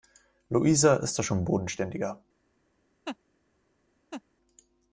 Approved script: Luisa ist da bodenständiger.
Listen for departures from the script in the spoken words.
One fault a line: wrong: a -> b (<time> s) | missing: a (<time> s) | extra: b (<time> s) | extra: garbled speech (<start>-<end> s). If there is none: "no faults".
extra: schon (1.2 s)